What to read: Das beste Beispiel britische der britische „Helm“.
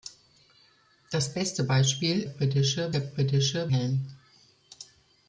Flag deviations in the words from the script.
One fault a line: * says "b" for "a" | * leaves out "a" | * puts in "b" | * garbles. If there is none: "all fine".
all fine